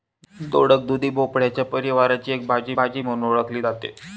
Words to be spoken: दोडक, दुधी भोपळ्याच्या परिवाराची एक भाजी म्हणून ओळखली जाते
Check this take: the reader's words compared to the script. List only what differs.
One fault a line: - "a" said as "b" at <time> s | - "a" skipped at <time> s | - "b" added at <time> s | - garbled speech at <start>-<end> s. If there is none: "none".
- "भाजी" added at 2.8 s